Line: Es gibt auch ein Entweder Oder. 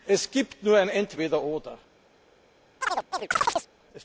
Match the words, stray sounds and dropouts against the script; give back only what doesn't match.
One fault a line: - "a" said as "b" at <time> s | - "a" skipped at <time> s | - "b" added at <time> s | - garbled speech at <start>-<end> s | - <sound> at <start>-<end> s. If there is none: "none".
- "auch" said as "nur" at 0.6 s
- chirp at 2.8-3.7 s